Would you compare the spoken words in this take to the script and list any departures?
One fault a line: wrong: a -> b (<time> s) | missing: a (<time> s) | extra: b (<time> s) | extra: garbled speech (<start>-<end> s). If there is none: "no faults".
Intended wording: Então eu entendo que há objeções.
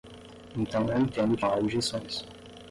no faults